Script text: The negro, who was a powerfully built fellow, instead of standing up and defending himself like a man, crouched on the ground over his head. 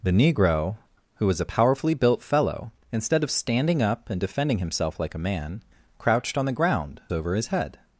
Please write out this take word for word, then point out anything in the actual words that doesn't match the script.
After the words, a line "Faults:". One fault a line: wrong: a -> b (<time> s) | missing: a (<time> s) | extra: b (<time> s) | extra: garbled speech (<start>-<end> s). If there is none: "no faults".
The negro, who was a powerfully built fellow, instead of standing up and defending himself like a man, crouched on the ground over his head.
Faults:
no faults